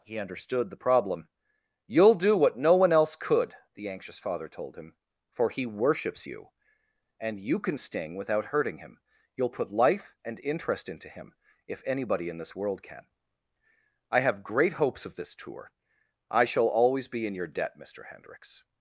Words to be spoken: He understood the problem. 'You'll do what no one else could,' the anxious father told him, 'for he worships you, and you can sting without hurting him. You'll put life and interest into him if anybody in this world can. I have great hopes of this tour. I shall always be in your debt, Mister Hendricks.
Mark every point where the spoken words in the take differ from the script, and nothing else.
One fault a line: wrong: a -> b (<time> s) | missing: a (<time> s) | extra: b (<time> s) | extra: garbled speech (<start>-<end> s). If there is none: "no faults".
no faults